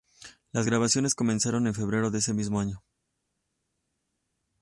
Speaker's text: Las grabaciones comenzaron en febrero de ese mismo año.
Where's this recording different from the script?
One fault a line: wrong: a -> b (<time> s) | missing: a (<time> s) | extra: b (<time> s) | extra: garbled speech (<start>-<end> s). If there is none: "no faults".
no faults